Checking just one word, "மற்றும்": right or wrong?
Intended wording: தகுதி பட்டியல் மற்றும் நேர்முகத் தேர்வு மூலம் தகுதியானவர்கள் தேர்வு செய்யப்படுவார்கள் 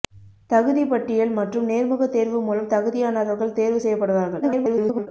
right